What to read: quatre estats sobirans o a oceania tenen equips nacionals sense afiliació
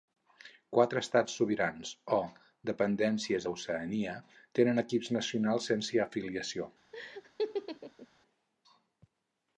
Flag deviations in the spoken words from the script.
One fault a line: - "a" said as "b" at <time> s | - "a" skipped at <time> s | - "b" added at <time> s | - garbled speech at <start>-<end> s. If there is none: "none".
- "dependències" added at 2.7 s